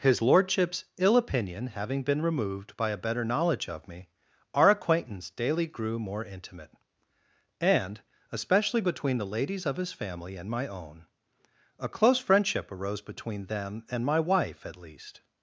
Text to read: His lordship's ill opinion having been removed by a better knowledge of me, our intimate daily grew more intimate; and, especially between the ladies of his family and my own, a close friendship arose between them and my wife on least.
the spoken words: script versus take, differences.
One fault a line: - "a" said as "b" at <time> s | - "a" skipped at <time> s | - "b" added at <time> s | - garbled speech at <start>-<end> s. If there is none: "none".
- "intimate" said as "acquaintance" at 4.7 s
- "on" said as "at" at 14.6 s